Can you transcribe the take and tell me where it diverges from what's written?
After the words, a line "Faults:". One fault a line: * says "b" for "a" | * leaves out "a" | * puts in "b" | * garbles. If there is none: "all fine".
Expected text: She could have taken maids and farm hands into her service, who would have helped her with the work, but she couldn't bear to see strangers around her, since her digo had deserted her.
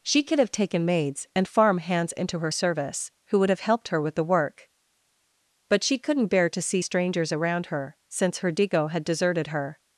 She could have taken maids and farm hands into her service, who would have helped her with the work, but she couldn't bear to see strangers around her, since her digo had deserted her.
Faults:
all fine